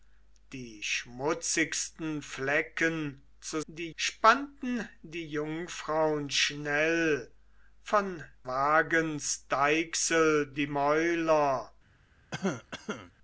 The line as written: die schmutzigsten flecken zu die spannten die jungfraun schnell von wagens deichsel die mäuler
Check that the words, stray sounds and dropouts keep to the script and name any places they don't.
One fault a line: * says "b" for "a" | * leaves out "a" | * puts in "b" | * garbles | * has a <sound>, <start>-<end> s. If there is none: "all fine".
* has a cough, 12.3-13.1 s